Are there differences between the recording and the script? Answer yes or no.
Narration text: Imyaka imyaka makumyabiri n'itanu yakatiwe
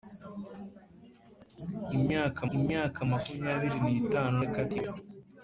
no